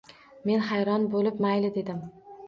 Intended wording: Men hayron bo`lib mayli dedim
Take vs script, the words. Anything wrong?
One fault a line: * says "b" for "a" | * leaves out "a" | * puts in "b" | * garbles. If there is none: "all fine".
all fine